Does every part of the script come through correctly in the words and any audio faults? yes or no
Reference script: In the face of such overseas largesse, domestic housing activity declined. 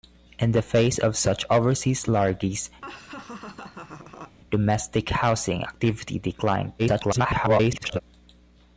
no